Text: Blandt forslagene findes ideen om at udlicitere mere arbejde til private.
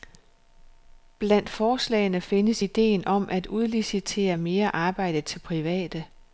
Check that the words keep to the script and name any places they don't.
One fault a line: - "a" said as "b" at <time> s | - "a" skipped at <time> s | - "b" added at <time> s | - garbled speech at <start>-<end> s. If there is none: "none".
none